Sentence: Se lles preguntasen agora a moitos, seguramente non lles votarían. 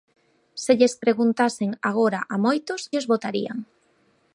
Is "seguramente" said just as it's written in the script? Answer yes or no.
no